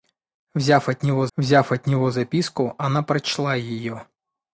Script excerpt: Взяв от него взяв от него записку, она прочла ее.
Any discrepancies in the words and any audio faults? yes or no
no